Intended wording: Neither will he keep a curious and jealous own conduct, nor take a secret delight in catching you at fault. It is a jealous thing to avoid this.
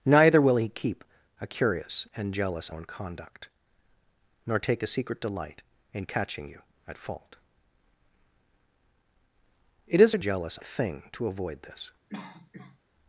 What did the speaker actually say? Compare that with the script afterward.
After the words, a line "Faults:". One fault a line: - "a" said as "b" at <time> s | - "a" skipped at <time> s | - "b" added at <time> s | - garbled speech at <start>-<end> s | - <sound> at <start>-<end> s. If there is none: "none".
Neither will he keep a curious and jealous own conduct, nor take a secret delight in catching you at fault. It is a jealous thing to avoid this.
Faults:
- cough at 12.1-12.8 s